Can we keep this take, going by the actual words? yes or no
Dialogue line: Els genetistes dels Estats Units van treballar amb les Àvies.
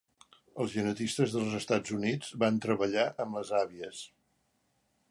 yes